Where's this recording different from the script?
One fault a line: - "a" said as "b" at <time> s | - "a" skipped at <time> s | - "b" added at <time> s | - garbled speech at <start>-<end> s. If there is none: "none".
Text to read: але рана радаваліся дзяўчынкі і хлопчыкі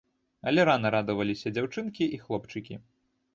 none